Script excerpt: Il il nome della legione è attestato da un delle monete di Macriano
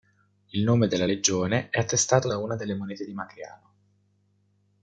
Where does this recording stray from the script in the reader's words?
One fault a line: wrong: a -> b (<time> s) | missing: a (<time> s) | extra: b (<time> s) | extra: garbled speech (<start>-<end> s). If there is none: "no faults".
missing: il (0.6 s)
wrong: un -> una (2.4 s)